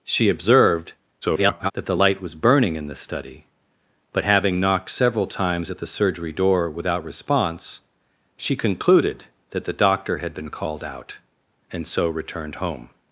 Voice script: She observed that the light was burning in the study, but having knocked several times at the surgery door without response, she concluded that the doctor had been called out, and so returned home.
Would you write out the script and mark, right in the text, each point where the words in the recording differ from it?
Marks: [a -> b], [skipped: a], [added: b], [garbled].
She observed [garbled] that the light was burning in the study, but having knocked several times at the surgery door without response, she concluded that the doctor had been called out, and so returned home.